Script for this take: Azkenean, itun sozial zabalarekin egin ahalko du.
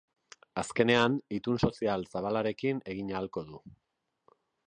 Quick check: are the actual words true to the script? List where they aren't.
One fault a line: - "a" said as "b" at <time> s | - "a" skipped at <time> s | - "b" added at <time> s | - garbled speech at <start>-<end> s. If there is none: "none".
none